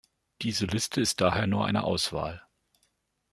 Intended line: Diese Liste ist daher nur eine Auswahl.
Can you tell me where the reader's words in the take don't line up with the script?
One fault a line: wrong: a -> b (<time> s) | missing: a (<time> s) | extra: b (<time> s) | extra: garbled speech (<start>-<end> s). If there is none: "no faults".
no faults